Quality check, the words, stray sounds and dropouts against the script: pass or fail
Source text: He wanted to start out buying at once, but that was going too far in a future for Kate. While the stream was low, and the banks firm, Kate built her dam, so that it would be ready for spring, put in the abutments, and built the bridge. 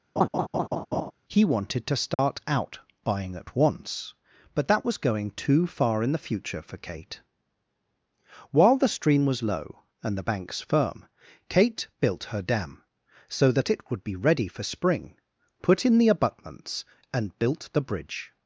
fail